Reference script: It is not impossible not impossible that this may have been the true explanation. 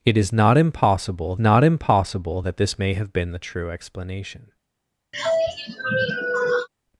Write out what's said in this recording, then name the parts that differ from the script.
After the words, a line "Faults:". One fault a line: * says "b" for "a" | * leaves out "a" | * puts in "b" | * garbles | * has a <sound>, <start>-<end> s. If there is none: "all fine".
It is not impossible not impossible that this may have been the true explanation.
Faults:
* has a sigh, 5.1-6.7 s